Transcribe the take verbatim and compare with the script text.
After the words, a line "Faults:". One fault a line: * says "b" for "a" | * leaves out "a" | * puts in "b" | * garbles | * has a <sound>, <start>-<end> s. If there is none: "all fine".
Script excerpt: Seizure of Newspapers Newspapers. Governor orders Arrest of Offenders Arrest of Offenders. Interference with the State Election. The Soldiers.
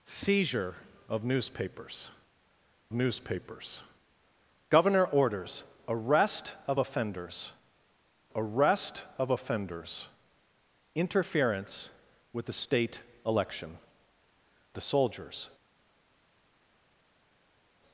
Seizure of Newspapers Newspapers. Governor orders Arrest of Offenders Arrest of Offenders. Interference with the State Election. The Soldiers.
Faults:
all fine